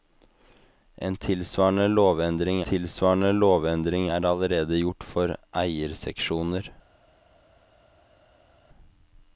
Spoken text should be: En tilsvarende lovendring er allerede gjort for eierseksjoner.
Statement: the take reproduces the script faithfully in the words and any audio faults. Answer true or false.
false